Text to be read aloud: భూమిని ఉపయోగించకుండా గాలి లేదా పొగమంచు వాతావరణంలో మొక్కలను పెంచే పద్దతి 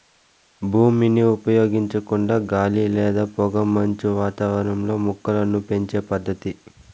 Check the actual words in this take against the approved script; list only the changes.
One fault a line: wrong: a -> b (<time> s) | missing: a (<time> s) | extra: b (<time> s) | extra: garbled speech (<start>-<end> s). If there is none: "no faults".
no faults